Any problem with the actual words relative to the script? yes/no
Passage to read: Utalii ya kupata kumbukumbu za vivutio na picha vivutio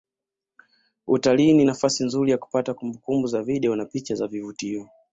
yes